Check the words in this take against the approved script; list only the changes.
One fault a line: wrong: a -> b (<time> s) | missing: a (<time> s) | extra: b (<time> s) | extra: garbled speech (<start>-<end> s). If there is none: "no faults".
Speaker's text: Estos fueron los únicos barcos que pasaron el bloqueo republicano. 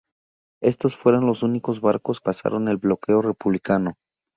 missing: que (2.2 s)